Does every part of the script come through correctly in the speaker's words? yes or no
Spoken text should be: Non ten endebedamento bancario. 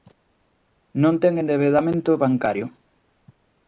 yes